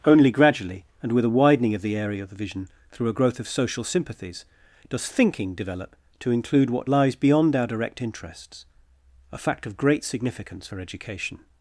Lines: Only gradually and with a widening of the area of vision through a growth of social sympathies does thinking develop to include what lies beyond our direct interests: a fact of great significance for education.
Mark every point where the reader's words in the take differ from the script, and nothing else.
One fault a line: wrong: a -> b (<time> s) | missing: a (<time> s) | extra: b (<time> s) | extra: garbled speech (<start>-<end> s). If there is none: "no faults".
extra: the (2.3 s)